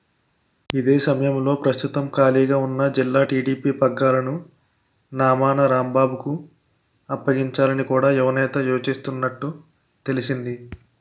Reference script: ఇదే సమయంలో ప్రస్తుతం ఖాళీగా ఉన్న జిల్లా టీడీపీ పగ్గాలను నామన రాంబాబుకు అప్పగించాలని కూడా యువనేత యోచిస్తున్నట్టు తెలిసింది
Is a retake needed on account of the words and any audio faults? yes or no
no